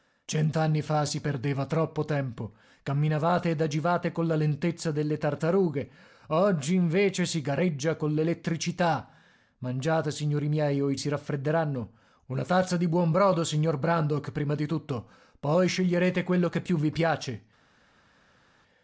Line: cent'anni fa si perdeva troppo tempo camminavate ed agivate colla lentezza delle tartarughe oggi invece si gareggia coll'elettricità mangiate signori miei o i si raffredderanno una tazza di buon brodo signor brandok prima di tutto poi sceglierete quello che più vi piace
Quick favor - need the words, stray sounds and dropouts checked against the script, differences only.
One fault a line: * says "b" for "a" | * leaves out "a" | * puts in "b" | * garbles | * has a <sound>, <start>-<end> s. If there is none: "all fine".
all fine